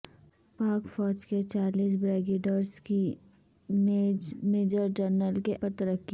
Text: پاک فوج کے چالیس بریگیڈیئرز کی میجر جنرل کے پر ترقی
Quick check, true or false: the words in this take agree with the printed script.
true